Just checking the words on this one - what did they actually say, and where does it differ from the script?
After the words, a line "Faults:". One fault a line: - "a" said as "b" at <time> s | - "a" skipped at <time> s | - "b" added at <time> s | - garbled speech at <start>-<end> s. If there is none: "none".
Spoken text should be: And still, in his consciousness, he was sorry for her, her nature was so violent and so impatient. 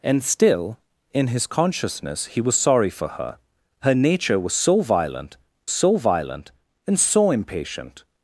And still, in his consciousness, he was sorry for her, her nature was so violent so violent and so impatient.
Faults:
- "so violent" added at 5.7 s